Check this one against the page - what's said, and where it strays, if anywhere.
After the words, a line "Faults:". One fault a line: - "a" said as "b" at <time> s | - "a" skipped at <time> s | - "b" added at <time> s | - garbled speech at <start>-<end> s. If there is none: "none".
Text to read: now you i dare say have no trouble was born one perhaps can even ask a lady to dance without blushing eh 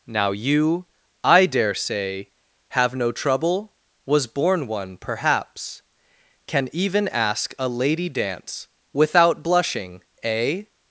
now you i dare say have no trouble was born one perhaps can even ask a lady dance without blushing eh
Faults:
- "to" skipped at 8.1 s